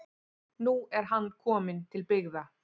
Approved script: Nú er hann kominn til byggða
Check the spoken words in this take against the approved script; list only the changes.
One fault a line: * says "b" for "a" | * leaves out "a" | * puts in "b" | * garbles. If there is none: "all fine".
all fine